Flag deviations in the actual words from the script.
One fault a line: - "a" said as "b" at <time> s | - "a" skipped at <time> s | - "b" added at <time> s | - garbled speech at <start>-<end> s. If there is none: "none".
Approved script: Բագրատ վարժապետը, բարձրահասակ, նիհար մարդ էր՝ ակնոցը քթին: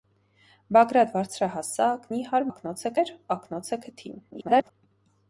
- "վարժապետը" skipped at 1.1 s
- "մարդ" said as "ակնոցը" at 2.5 s
- garbled speech at 4.3-4.7 s